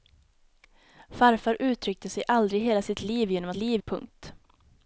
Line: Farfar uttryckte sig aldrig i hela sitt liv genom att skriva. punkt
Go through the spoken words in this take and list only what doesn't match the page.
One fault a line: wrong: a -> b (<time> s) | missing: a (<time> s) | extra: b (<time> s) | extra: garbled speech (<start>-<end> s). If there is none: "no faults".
wrong: skriva -> liv (3.5 s)